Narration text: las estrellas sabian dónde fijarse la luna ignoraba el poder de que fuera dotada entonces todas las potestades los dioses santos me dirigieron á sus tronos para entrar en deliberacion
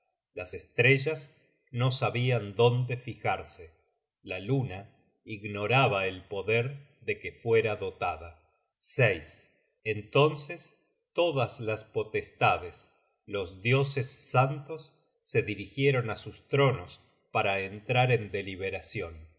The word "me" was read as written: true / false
false